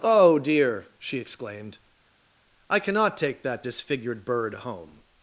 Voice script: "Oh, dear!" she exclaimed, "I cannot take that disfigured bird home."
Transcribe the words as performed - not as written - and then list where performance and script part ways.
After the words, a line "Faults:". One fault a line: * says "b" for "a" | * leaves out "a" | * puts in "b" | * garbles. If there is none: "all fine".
"Oh, dear!" she exclaimed, "I cannot take that disfigured bird home."
Faults:
all fine